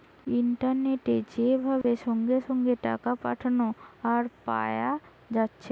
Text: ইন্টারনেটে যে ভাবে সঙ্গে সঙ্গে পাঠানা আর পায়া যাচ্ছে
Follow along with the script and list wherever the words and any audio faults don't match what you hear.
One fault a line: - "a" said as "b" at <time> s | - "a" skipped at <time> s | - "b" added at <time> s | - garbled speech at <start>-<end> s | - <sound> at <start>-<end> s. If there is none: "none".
- dropout at 1.8-1.8 s
- "টাকা" added at 2.9 s